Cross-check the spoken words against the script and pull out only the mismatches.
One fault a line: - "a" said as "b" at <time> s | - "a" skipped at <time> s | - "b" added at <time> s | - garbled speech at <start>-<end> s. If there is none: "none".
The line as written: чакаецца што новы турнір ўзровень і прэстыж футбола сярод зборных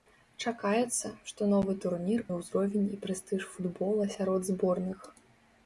none